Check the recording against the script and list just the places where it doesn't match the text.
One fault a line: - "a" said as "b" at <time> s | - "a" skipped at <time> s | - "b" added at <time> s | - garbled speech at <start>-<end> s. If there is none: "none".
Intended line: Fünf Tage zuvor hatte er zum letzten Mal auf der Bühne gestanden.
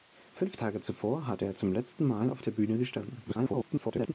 - garbled speech at 3.2-4.1 s